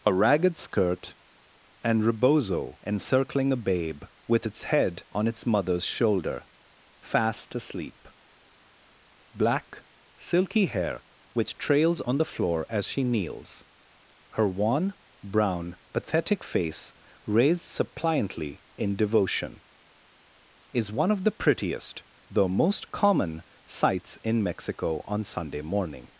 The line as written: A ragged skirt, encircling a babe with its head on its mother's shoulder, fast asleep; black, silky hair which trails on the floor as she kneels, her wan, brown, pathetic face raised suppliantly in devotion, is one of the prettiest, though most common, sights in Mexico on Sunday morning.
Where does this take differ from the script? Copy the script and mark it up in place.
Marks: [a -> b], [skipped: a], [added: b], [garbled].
A ragged skirt, [added: and rebozo] encircling a babe with its head on its mother's shoulder, fast asleep; black, silky hair which trails on the floor as she kneels, her wan, brown, pathetic face raised suppliantly in devotion, is one of the prettiest, though most common, sights in Mexico on Sunday morning.